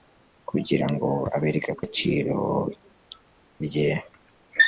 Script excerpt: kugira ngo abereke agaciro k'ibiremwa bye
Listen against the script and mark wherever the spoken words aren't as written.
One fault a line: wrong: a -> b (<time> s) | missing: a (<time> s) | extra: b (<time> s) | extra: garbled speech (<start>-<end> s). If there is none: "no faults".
missing: k'ibiremwa (2.4 s)